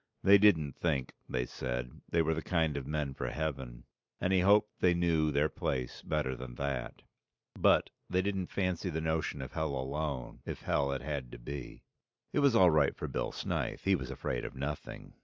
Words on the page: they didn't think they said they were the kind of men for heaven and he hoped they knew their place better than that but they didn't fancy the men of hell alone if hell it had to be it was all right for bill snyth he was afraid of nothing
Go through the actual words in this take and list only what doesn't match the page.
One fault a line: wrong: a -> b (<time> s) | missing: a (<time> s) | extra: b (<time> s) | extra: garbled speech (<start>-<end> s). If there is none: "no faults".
wrong: men -> notion (9.0 s)